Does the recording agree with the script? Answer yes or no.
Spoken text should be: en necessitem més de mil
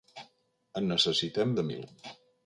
no